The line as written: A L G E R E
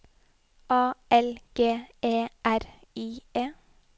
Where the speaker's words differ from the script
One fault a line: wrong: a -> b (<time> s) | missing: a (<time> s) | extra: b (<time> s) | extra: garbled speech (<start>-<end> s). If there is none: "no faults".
extra: I (3.0 s)